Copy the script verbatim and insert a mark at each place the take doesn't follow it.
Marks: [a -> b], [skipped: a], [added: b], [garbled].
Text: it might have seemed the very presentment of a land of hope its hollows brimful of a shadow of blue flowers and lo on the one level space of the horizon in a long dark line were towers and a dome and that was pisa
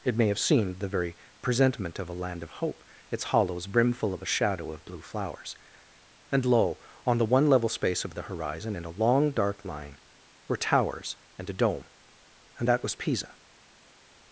it [might -> may] have seemed the very presentment of a land of hope its hollows brimful of a shadow of blue flowers and lo on the one level space of the horizon in a long dark line were towers and a dome and that was pisa